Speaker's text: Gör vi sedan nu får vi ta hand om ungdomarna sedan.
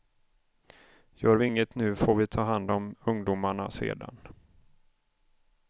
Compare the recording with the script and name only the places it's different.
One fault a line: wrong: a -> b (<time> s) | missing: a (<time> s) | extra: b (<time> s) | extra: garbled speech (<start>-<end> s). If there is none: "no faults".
wrong: sedan -> inget (1.4 s)